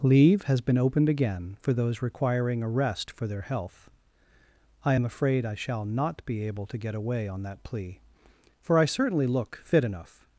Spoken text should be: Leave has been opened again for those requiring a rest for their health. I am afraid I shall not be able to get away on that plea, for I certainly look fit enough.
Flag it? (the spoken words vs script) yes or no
no